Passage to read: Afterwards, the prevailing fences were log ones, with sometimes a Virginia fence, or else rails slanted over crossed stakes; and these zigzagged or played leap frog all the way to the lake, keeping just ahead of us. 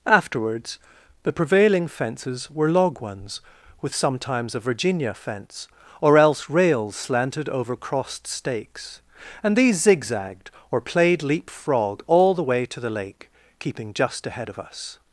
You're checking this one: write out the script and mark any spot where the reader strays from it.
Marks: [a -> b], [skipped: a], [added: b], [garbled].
Afterwards, the prevailing fences were log ones, with sometimes a Virginia fence, or else rails slanted over crossed stakes; and these zigzagged or played leap frog all the way to the lake, keeping just ahead of us.